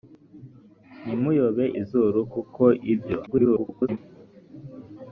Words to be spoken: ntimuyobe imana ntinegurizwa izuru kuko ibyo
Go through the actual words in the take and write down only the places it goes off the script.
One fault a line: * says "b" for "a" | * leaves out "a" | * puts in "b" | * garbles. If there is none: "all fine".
* leaves out "imana ntinegurizwa"
* garbles